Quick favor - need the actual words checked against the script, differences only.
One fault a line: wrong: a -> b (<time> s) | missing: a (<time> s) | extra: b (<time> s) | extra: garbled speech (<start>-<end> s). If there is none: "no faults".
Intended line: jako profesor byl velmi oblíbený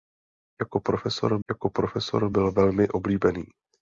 extra: jako profesor (1.5 s)